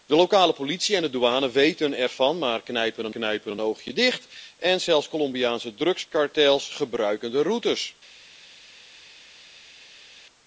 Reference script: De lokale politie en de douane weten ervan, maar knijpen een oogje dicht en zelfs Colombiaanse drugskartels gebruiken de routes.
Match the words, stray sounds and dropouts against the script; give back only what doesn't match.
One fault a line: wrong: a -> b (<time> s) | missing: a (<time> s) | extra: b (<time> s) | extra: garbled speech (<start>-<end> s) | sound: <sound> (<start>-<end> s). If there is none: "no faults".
extra: knijpen een (3.1 s)